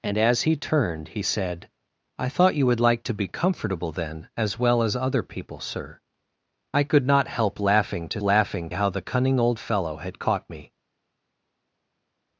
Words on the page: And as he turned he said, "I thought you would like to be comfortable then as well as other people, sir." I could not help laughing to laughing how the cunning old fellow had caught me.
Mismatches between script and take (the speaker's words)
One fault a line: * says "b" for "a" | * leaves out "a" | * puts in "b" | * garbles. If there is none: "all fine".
all fine